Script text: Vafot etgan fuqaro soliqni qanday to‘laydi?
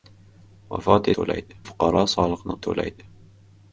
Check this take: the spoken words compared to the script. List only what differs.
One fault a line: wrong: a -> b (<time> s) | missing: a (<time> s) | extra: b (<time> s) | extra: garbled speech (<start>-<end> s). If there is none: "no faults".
wrong: etgan -> to‘laydi (1.2 s)
missing: qanday (2.6 s)